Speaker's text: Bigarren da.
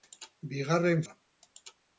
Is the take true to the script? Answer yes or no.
yes